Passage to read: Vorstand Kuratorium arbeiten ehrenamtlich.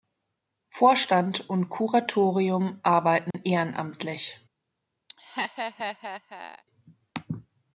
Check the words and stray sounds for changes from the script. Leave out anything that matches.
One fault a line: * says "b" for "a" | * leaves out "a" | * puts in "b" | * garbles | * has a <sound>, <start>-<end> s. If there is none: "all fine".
* puts in "und"
* has a dropout, 3.3-3.3 s
* has a laugh, 5.1-6.6 s